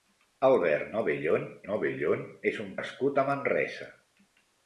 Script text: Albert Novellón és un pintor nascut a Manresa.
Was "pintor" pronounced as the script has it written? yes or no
no